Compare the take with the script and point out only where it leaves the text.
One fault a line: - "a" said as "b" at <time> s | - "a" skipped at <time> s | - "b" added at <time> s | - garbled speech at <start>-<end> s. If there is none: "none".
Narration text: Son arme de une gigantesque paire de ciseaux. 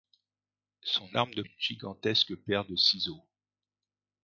none